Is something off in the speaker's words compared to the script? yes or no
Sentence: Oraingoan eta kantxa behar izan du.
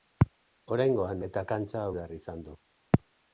no